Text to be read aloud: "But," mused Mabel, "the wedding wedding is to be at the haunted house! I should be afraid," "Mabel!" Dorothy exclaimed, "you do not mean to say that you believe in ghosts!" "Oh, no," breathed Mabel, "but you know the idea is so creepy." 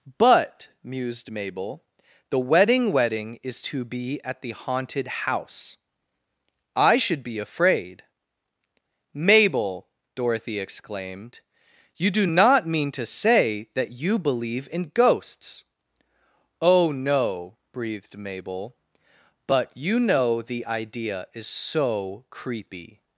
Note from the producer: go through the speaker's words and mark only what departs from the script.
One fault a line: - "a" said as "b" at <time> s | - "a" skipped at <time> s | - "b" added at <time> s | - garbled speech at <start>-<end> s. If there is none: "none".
none